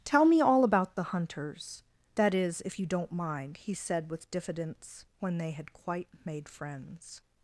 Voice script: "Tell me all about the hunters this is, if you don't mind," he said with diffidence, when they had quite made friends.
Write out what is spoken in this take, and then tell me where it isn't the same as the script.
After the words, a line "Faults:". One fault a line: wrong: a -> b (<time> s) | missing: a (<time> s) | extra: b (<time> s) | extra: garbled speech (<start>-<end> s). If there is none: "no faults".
"Tell me all about the hunters that is, if you don't mind," he said with diffidence, when they had quite made friends.
Faults:
wrong: this -> that (2.2 s)